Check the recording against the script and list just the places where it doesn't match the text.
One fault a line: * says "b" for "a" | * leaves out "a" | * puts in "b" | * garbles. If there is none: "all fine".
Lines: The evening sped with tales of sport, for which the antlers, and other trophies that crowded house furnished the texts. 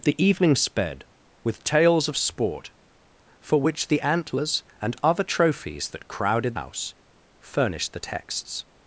all fine